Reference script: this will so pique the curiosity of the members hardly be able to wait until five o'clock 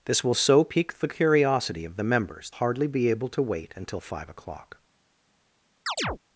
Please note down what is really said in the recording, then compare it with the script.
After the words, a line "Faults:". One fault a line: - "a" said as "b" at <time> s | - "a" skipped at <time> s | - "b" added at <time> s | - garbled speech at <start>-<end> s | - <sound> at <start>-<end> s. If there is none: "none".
this will so pique the curiosity of the members hardly be able to wait until five o'clock
Faults:
- chirp at 5.9-6.2 s